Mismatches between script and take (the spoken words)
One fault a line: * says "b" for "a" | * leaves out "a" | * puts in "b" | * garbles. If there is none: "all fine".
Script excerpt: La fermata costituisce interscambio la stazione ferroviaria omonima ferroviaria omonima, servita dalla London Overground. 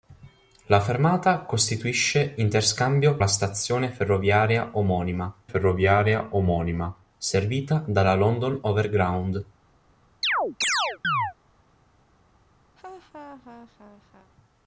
all fine